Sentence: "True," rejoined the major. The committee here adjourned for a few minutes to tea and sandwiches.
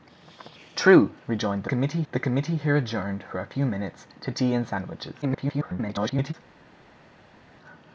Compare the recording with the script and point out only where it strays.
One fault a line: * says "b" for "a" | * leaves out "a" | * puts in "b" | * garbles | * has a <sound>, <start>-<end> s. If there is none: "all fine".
* says "committee" for "major"
* garbles